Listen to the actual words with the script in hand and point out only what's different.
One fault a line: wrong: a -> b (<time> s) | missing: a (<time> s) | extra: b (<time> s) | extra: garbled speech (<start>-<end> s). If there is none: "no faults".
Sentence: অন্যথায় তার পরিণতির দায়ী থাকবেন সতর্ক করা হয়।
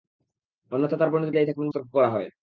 no faults